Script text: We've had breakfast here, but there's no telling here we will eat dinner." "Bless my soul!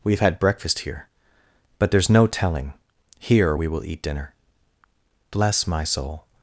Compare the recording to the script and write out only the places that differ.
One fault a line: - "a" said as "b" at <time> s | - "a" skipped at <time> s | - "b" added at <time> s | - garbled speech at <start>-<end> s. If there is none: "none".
none